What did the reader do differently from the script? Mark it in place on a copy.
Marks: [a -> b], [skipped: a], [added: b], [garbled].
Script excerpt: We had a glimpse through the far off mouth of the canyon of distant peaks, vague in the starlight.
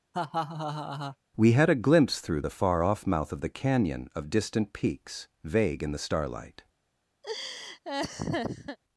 We had a glimpse through the far off mouth of the canyon of distant peaks, vague in the starlight.